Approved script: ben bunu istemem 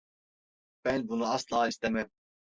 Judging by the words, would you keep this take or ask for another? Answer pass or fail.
fail